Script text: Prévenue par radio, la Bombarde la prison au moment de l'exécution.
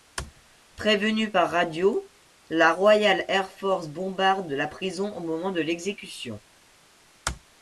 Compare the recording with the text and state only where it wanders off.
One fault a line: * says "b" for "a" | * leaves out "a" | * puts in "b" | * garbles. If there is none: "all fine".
* puts in "Royal Air Force"